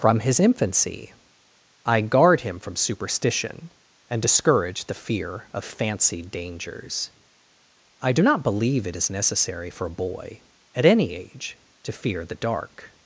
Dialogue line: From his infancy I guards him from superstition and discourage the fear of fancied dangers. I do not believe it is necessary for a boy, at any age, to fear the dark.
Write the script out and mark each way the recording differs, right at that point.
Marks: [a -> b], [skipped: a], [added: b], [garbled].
From his infancy I [guards -> guard] him from superstition and discourage the fear of fancied dangers. I do not believe it is necessary for a boy, at any age, to fear the dark.